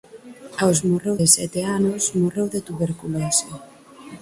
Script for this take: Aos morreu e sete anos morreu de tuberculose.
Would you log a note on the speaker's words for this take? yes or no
no